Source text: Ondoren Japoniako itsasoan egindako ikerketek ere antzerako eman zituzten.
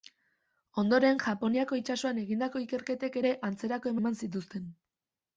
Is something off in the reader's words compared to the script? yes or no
no